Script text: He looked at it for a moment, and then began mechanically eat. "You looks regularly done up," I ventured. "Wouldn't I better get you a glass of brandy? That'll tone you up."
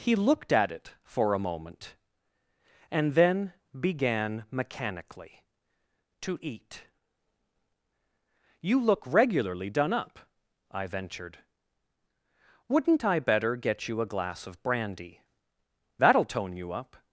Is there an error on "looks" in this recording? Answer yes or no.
yes